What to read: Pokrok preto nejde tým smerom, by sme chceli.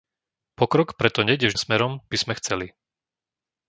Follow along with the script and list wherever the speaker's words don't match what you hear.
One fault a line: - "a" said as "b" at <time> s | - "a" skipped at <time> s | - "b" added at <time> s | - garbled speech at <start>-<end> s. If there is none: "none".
none